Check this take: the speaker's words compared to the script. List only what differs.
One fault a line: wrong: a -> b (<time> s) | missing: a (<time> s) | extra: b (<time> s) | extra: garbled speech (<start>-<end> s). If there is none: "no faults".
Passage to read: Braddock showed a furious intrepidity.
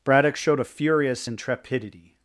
no faults